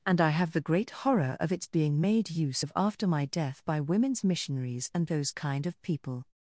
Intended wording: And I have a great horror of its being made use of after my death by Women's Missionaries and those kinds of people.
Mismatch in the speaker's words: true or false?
true